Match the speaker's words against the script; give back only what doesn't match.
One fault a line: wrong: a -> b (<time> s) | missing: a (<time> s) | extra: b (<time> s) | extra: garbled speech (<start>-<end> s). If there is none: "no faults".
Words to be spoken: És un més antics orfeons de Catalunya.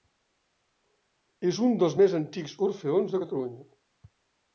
extra: dels (1.8 s)